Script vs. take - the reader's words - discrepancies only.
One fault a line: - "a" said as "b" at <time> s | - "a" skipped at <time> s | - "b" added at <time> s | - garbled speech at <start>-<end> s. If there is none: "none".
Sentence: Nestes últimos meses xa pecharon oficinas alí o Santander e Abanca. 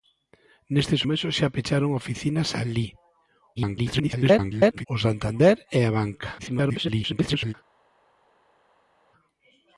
- "últimos" skipped at 1.0 s
- garbled speech at 3.6-4.9 s
- garbled speech at 6.4-7.5 s